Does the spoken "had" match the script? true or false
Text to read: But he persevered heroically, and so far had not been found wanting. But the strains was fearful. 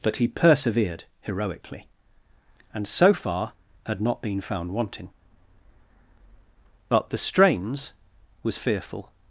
true